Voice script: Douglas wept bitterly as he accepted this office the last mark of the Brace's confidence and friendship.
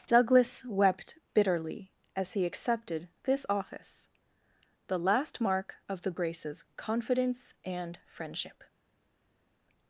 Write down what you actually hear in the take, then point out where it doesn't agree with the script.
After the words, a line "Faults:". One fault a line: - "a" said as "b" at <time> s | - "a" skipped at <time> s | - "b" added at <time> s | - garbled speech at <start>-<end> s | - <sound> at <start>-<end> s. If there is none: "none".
Douglas wept bitterly as he accepted this office the last mark of the Brace's confidence and friendship.
Faults:
none